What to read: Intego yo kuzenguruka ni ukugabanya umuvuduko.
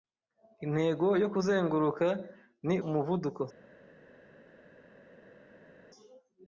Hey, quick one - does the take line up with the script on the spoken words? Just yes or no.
no